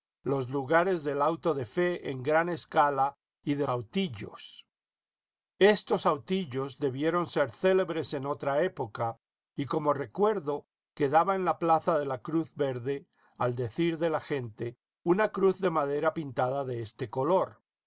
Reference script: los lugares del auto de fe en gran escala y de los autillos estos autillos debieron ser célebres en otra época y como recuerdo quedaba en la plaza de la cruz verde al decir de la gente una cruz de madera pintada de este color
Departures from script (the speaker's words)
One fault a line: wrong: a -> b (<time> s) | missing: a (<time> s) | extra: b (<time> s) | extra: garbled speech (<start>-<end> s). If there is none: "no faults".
missing: los (3.7 s)